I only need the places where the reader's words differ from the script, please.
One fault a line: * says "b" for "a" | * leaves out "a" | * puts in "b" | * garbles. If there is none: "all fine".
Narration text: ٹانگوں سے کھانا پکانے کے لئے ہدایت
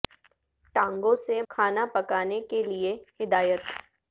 all fine